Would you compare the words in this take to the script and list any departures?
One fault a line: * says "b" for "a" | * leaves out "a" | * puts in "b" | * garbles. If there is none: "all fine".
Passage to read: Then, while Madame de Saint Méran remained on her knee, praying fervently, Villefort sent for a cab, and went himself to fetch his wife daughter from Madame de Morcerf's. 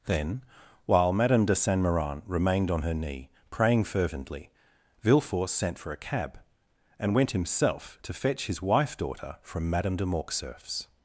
all fine